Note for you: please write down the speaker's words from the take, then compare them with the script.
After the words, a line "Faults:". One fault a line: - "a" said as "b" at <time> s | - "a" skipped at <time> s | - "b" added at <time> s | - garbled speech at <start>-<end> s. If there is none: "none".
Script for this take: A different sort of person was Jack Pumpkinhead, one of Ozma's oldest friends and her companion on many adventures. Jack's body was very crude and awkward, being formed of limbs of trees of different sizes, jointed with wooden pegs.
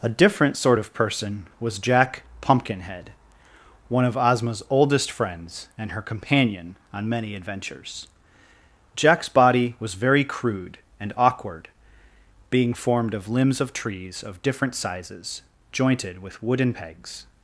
A different sort of person was Jack Pumpkinhead, one of Ozma's oldest friends and her companion on many adventures. Jack's body was very crude and awkward, being formed of limbs of trees of different sizes, jointed with wooden pegs.
Faults:
none